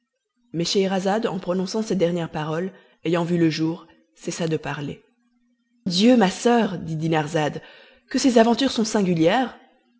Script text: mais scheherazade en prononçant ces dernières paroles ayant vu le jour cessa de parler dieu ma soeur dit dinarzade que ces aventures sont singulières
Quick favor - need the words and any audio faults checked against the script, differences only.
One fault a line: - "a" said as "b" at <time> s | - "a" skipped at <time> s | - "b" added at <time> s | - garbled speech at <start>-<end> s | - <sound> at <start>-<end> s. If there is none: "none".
none